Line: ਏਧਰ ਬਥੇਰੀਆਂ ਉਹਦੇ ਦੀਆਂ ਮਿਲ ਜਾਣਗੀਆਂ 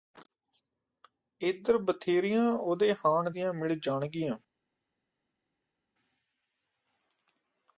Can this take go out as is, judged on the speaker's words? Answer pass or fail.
fail